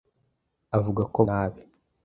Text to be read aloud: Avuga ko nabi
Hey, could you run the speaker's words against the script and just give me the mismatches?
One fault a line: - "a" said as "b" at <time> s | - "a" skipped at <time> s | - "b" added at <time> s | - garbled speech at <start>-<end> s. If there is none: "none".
none